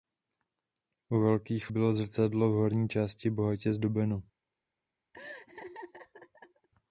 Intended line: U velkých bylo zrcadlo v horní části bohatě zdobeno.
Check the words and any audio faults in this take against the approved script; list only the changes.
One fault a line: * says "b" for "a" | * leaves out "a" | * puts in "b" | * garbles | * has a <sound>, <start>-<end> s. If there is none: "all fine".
* has a laugh, 5.1-6.7 s